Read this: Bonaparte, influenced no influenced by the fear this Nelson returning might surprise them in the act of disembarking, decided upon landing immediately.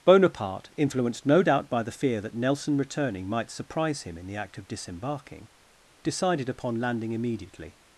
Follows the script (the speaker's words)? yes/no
no